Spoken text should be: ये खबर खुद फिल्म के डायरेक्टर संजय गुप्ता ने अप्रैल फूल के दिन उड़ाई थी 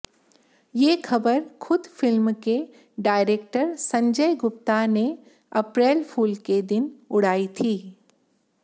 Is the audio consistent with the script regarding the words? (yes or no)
yes